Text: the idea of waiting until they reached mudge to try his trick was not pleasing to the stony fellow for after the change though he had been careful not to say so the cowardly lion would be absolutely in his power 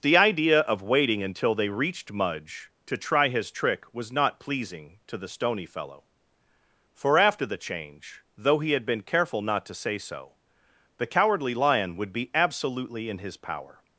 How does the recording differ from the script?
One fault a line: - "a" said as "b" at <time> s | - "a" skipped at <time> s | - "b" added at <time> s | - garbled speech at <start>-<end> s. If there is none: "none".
none